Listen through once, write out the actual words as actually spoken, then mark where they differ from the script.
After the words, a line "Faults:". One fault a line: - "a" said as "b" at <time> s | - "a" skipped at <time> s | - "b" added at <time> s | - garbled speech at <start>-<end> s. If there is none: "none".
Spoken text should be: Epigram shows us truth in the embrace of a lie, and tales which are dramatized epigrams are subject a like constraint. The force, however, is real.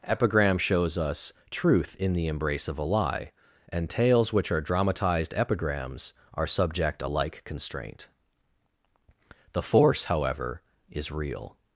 Epigram shows us truth in the embrace of a lie, and tales which are dramatized epigrams are subject a like constraint. The force, however, is real.
Faults:
none